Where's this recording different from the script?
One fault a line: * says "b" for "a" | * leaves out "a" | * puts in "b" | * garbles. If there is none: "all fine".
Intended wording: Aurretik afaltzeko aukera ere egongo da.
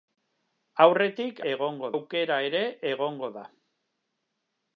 * says "egongo" for "afaltzeko"